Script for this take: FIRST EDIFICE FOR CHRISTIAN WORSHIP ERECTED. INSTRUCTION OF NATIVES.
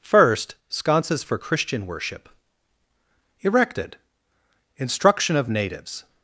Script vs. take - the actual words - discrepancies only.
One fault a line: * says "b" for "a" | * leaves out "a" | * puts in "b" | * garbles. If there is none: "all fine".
* says "Sconces" for "EDIFICE"